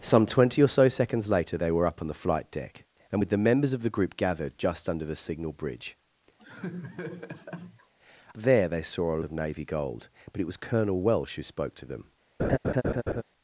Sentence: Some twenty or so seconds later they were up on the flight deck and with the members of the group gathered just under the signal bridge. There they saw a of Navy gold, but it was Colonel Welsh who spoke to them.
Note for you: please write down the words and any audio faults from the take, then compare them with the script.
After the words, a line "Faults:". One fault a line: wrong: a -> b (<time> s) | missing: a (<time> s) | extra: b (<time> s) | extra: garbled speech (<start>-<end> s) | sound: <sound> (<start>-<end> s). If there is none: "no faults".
Some twenty or so seconds later they were up on the flight deck and with the members of the group gathered just under the signal bridge. There they saw a of Navy gold, but it was Colonel Welsh who spoke to them.
Faults:
sound: laugh (6.4-7.9 s)
sound: laugh (12.4-13.2 s)